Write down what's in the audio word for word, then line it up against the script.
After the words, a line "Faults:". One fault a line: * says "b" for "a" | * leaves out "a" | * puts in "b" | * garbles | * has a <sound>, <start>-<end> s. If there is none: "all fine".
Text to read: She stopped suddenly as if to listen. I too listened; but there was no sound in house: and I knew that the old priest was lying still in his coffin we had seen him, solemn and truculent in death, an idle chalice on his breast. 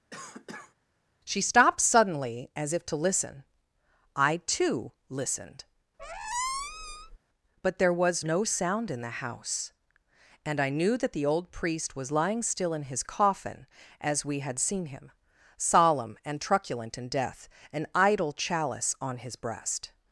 She stopped suddenly as if to listen. I too listened; but there was no sound in the house: and I knew that the old priest was lying still in his coffin as we had seen him, solemn and truculent in death, an idle chalice on his breast.
Faults:
* has a cough, 0.1-0.7 s
* has a squeak, 6.0-7.2 s
* puts in "the"
* puts in "as"